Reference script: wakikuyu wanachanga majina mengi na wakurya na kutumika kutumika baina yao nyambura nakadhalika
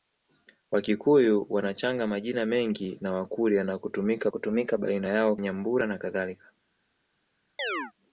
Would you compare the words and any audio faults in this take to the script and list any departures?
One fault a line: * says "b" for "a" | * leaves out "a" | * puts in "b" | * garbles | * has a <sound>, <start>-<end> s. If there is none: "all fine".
* has a chirp, 7.6-7.9 s